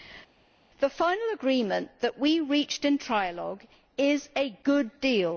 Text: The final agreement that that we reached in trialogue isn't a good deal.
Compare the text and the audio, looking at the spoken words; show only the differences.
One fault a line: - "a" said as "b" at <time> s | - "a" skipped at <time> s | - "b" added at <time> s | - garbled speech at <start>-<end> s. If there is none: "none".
- "that" skipped at 2.2 s
- "isn't" said as "is" at 4.0 s